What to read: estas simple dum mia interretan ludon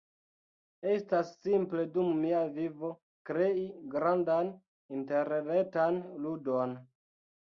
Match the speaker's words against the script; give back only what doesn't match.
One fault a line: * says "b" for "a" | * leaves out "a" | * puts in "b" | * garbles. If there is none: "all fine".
* puts in "vivo krei grandan"